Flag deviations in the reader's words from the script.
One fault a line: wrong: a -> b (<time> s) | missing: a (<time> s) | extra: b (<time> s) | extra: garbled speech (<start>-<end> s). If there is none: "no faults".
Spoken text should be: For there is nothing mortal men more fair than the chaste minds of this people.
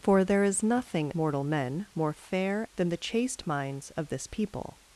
no faults